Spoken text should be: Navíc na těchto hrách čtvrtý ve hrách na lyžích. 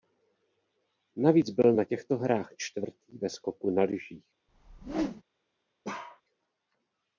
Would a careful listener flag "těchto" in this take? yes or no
no